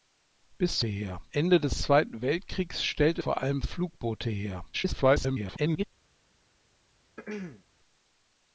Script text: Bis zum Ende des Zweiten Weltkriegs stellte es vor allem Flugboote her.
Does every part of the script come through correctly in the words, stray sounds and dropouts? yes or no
no